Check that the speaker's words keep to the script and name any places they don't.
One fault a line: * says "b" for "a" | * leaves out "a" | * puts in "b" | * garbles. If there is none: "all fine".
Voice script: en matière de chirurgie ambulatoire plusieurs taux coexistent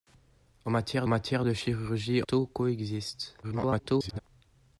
* puts in "matière"
* leaves out "ambulatoire plusieurs"
* garbles